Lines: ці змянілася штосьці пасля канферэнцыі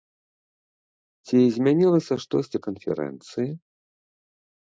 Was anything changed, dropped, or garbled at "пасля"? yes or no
yes